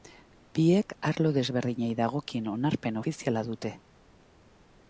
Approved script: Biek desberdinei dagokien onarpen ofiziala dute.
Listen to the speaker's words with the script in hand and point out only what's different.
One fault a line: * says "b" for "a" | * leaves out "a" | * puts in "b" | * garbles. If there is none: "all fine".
* puts in "arlo"